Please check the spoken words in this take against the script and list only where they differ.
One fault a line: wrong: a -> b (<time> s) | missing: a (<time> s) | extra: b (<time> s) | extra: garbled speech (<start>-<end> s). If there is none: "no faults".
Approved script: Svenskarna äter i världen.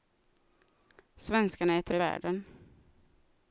no faults